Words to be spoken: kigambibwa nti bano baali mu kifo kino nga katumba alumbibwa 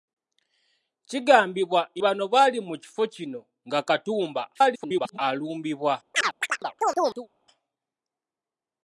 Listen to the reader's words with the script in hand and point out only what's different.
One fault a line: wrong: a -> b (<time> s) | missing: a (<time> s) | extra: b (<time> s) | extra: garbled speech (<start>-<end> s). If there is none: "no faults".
missing: nti (1.8 s)
extra: garbled speech (4.5-5.2 s)